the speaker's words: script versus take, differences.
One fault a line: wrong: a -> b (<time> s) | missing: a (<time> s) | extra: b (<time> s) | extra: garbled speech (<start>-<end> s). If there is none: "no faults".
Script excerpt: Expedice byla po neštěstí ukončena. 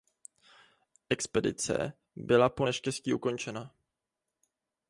no faults